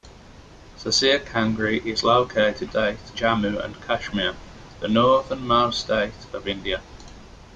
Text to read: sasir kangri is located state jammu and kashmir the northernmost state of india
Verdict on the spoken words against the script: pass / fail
pass